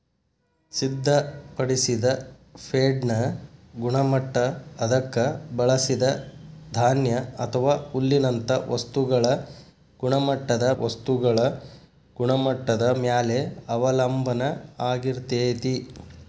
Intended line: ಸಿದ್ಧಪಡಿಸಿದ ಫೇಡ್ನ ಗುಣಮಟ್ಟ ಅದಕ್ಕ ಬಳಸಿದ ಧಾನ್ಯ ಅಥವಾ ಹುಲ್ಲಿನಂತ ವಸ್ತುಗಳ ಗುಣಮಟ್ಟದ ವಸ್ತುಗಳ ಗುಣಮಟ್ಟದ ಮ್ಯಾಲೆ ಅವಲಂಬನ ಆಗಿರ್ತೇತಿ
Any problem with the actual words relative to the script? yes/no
no